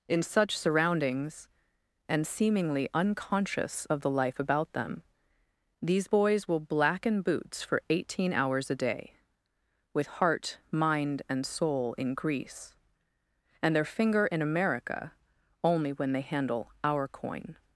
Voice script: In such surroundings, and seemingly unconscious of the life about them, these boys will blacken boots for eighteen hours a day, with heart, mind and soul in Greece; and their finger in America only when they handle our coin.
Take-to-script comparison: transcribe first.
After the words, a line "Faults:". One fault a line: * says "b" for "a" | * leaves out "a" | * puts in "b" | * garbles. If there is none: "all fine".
In such surroundings, and seemingly unconscious of the life about them, these boys will blacken boots for eighteen hours a day, with heart, mind and soul in Greece; and their finger in America only when they handle our coin.
Faults:
all fine